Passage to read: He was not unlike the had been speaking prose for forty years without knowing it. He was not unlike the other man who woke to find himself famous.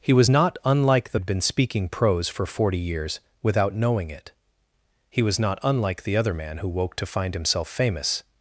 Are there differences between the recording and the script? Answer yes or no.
no